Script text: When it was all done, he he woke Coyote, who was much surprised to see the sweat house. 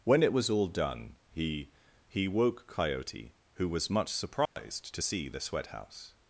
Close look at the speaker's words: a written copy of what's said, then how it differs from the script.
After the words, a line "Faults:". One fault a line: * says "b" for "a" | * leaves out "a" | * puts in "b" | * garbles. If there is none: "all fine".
When it was all done, he he woke Coyote, who was much surprised to see the sweat house.
Faults:
all fine